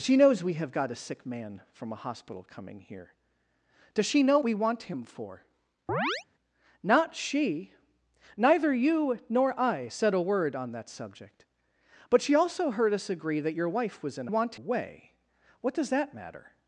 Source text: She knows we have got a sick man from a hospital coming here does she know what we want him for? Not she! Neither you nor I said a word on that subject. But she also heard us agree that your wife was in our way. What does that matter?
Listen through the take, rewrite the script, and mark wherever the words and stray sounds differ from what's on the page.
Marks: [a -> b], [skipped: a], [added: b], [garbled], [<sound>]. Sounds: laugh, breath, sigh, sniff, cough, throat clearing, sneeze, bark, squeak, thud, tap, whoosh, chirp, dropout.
She knows we have got a sick man from a hospital coming here does she know [skipped: what] we want him for? [chirp] Not she! Neither you nor I said a word on that subject. But she also heard us agree that your wife was in [our -> want] way. What does that matter?